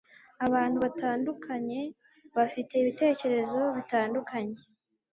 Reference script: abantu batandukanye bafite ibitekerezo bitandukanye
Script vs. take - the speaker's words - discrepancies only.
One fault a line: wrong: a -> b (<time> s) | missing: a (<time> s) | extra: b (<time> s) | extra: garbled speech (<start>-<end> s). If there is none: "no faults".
no faults